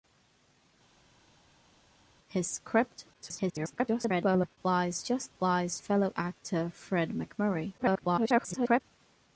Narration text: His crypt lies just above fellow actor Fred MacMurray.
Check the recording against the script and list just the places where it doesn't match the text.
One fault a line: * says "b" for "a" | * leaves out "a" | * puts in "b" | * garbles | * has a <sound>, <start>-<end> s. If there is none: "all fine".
* garbles
* says "lies" for "above"
* garbles